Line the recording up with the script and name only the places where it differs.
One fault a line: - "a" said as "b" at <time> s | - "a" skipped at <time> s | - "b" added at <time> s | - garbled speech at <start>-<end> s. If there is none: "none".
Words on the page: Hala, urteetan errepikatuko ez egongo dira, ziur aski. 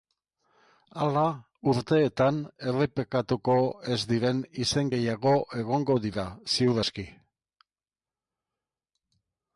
- "diren izen gehiago" added at 4.1 s